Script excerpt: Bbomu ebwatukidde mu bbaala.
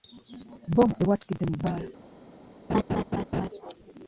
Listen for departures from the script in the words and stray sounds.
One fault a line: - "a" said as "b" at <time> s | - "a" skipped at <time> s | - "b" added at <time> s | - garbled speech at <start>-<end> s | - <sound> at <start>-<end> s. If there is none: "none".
- laugh at 2.7-3.5 s